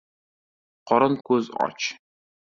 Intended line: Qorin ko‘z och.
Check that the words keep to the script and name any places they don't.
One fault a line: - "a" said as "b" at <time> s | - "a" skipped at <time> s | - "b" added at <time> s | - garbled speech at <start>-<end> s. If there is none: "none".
none